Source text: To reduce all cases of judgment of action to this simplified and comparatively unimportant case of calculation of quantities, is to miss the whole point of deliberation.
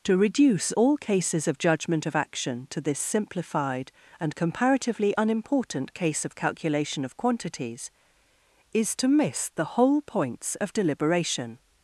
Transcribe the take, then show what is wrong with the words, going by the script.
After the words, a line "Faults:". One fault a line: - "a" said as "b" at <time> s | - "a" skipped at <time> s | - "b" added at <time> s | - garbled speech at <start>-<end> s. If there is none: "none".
To reduce all cases of judgment of action to this simplified and comparatively unimportant case of calculation of quantities, is to miss the whole points of deliberation.
Faults:
- "point" said as "points" at 10.0 s